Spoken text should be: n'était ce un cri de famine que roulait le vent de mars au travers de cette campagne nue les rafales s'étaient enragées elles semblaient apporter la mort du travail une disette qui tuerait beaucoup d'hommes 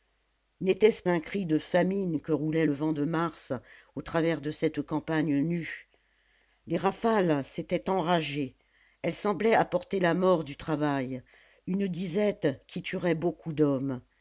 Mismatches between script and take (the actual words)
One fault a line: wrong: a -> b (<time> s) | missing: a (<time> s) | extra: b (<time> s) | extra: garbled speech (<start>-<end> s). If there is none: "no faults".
no faults